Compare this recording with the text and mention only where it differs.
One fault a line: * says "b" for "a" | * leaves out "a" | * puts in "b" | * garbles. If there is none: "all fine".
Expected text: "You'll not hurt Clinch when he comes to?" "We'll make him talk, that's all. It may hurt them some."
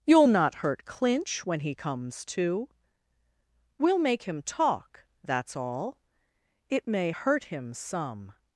* says "him" for "them"